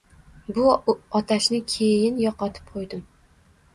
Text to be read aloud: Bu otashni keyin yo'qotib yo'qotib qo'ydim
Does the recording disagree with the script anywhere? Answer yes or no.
yes